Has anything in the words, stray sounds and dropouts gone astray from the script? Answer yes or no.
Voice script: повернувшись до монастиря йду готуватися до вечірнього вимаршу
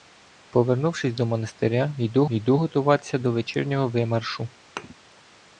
yes